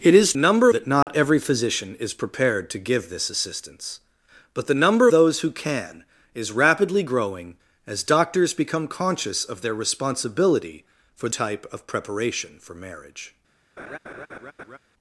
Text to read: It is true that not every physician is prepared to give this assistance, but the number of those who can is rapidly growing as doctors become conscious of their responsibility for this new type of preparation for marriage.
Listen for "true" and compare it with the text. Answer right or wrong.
wrong